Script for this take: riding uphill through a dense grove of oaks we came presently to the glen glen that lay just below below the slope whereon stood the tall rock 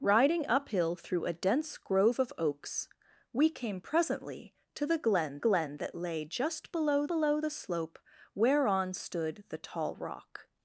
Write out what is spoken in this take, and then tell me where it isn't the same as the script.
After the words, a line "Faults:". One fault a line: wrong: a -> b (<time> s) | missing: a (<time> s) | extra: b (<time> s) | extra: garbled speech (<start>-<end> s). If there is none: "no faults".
riding uphill through a dense grove of oaks we came presently to the glen glen that lay just below below the slope whereon stood the tall rock
Faults:
no faults